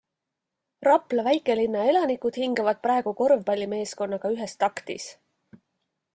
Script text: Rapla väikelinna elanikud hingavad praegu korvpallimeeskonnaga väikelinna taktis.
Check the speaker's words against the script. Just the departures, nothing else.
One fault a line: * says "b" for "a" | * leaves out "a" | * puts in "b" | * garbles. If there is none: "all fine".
* says "ühes" for "väikelinna"